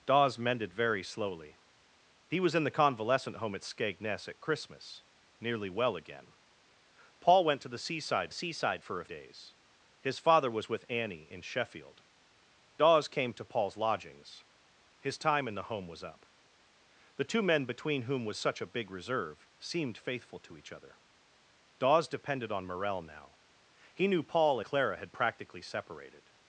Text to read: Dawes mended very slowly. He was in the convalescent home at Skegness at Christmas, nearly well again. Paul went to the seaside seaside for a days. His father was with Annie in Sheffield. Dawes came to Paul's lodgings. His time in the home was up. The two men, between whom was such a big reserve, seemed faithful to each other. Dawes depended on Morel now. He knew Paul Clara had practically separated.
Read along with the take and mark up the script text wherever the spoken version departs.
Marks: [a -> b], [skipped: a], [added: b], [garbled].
Dawes mended very slowly. He was in the convalescent home at Skegness at Christmas, nearly well again. Paul went to the seaside seaside for a days. His father was with Annie in Sheffield. Dawes came to Paul's lodgings. His time in the home was up. The two men, between whom was such a big reserve, seemed faithful to each other. Dawes depended on Morel now. He knew Paul Clara had practically separated.